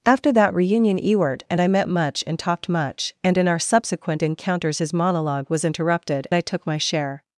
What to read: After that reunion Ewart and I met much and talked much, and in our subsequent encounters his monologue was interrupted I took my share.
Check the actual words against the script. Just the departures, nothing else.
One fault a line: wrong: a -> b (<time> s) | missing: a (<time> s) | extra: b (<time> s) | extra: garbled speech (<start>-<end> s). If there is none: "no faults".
no faults